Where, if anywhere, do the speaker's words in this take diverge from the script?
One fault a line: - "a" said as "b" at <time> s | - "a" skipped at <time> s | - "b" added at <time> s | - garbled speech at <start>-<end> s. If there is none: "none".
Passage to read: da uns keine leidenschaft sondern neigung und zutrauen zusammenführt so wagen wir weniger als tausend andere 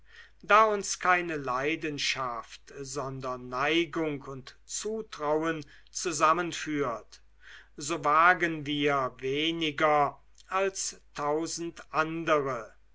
none